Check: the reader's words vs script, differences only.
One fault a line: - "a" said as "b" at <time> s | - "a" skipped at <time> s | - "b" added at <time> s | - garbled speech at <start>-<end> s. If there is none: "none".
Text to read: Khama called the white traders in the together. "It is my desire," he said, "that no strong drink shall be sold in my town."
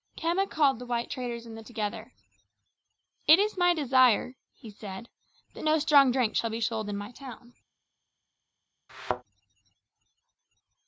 none